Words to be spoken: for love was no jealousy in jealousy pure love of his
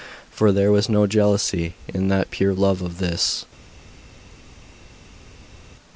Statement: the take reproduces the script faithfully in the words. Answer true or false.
false